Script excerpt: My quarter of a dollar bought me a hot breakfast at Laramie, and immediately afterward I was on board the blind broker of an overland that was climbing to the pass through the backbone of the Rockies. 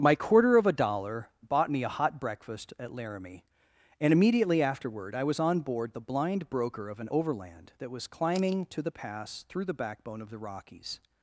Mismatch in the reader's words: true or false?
false